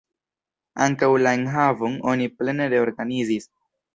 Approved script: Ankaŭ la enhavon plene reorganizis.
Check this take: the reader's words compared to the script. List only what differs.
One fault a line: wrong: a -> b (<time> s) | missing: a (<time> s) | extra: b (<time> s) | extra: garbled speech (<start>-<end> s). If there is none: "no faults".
extra: oni (2.1 s)